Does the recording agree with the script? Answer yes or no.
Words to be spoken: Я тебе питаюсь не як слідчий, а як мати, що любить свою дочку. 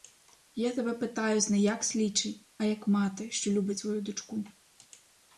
yes